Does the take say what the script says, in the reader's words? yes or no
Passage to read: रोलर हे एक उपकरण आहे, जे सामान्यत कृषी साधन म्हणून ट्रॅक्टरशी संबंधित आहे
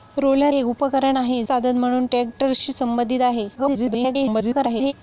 no